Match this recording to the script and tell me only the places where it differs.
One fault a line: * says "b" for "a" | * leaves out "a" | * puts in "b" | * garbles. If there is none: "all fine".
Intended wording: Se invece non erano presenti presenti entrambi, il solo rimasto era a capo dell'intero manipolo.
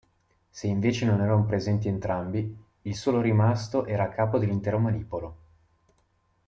* leaves out "presenti"